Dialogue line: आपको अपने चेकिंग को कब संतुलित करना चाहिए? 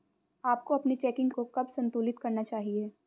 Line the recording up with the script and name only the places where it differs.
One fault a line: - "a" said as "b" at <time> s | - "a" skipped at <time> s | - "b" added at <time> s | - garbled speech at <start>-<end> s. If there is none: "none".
none